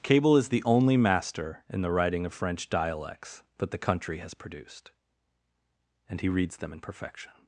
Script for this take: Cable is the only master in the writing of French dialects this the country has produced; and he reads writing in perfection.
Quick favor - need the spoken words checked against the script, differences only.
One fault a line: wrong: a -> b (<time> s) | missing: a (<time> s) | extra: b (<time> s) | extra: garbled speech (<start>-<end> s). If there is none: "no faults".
wrong: this -> that (3.6 s)
wrong: writing -> them (6.6 s)